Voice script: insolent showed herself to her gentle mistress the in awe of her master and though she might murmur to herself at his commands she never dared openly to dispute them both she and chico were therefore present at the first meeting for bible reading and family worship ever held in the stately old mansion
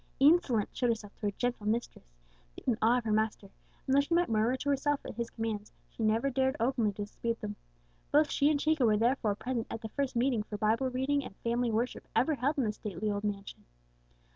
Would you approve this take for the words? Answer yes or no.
yes